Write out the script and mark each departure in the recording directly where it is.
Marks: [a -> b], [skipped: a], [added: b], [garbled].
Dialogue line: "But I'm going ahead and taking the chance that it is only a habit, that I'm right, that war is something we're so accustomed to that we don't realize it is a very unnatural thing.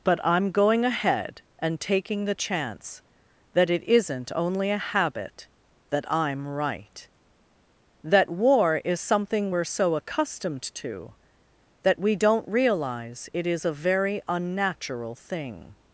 "But I'm going ahead and taking the chance that it [is -> isn't] only a habit, that I'm right, that war is something we're so accustomed to that we don't realize it is a very unnatural thing.